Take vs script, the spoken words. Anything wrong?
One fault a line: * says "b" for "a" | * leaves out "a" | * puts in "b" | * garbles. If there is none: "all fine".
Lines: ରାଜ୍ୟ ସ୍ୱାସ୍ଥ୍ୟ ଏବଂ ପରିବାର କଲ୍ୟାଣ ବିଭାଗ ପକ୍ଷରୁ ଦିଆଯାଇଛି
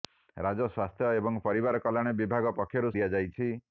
all fine